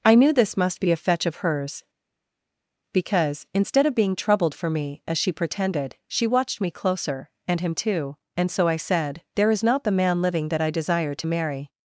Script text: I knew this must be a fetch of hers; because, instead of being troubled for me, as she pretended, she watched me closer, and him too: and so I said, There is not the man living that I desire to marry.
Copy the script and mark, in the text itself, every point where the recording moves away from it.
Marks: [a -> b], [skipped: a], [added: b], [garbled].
I knew this must be a fetch of hers; because, instead of being troubled for me, as she pretended, she watched me closer, and him too: and so I said, There is not the man living that I desire to marry.